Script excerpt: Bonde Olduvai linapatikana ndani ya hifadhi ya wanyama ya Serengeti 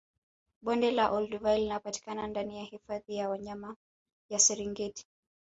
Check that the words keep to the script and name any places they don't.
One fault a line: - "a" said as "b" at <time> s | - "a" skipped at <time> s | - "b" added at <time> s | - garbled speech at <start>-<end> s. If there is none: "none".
- "la" added at 0.9 s